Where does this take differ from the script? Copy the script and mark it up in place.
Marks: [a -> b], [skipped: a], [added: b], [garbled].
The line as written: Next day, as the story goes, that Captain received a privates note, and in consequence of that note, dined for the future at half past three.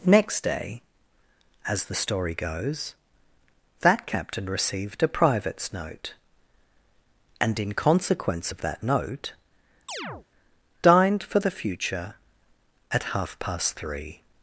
Next day, as the story goes, that Captain received a privates note, and in consequence of that note, dined for the future at half past three.